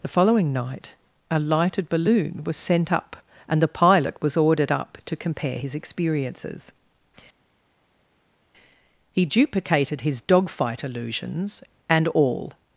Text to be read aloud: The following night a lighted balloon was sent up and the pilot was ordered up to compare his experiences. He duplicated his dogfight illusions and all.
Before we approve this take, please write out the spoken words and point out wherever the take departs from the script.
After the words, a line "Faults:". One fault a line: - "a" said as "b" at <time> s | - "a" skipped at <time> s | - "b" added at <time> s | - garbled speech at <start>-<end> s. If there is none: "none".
The following night a lighted balloon was sent up and the pilot was ordered up to compare his experiences. He duplicated his dogfight illusions and all.
Faults:
none